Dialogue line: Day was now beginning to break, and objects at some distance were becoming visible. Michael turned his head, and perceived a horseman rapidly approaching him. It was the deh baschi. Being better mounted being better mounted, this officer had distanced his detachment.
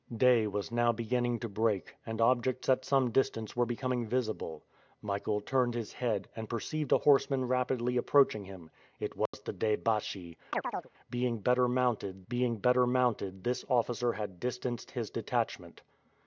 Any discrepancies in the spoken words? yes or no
no